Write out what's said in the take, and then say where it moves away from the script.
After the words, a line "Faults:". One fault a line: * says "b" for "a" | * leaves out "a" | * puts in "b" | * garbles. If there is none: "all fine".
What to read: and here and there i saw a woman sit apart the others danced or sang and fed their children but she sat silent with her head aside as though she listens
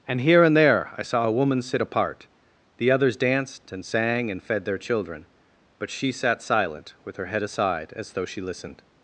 and here and there i saw a woman sit apart the others danced and sang and fed their children but she sat silent with her head aside as though she listened
Faults:
* says "and" for "or"
* says "listened" for "listens"